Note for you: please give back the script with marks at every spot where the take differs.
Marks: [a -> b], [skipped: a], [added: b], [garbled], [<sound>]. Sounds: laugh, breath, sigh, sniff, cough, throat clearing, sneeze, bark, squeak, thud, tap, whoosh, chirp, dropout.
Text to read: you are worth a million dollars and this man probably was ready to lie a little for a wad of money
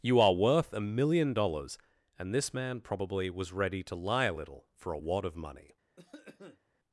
you are worth a million dollars and this man probably was ready to lie a little for a wad of money [cough]